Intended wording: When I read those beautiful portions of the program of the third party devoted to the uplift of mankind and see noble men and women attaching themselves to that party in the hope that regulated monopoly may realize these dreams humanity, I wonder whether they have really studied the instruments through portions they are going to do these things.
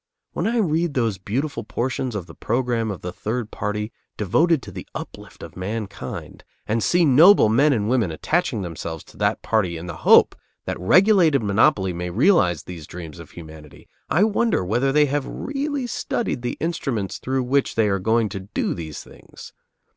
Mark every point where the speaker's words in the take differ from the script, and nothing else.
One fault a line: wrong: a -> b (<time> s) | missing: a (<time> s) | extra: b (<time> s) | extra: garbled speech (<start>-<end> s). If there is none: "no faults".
extra: of (13.2 s)
wrong: portions -> which (17.4 s)